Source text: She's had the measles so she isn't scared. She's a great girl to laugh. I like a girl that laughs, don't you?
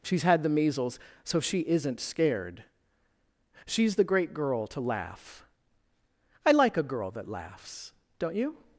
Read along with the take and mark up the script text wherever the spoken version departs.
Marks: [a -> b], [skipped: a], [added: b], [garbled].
She's had the measles so she isn't scared. She's [a -> the] great girl to laugh. I like a girl that laughs, don't you?